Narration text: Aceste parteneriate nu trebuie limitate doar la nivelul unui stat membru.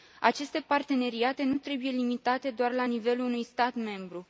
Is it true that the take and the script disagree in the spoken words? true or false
false